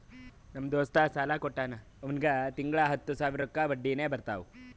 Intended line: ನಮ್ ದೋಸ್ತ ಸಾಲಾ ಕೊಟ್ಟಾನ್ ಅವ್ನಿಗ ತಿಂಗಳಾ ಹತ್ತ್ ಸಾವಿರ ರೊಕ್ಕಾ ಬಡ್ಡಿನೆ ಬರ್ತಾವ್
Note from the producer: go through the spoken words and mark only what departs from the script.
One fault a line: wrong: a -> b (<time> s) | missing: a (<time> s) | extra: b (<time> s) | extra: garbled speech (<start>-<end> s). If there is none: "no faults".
no faults